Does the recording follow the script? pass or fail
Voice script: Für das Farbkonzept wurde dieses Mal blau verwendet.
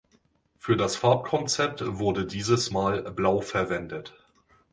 pass